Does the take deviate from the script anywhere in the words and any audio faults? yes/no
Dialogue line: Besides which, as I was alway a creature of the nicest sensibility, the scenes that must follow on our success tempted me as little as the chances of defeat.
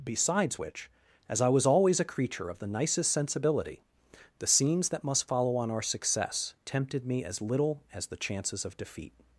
yes